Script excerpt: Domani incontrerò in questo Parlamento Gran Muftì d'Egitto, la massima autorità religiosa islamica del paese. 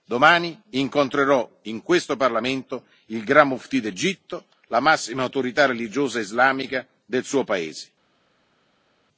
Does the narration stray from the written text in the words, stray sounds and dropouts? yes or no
yes